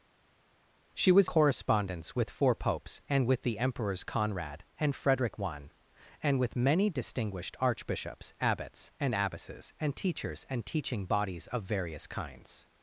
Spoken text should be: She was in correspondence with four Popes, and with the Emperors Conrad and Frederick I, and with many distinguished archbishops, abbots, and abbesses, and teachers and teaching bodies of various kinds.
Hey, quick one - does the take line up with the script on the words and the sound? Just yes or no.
no